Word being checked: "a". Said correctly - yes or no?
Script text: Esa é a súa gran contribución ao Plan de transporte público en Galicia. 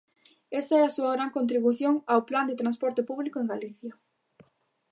yes